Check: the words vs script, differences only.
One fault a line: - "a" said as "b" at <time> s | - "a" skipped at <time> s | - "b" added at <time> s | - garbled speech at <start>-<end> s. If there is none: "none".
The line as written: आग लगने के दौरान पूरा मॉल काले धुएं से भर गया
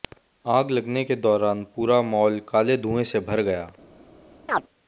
none